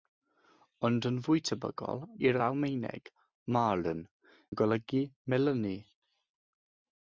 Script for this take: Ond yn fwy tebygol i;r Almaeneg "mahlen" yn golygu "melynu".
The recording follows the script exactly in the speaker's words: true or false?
true